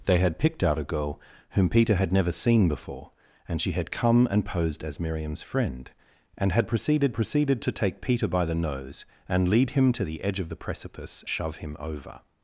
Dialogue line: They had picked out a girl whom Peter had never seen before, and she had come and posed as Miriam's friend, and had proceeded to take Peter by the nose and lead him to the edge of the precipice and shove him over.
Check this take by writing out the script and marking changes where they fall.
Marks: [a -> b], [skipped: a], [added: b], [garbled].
They had picked out a girl whom Peter had never seen before, and she had come and posed as Miriam's friend, and had proceeded [added: proceeded] to take Peter by the nose and lead him to the edge of the precipice [skipped: and] shove him over.